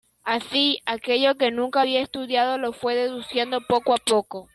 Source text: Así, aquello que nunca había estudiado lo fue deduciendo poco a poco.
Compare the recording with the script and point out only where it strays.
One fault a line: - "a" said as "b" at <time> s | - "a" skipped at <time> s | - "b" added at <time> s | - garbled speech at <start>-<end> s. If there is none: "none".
none